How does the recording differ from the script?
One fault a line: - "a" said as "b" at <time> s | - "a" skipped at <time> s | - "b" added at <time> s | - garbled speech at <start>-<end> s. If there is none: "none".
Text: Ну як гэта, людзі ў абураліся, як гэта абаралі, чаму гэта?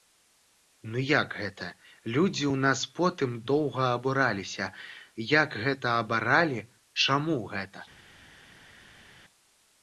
- "нас потым доўга" added at 2.7 s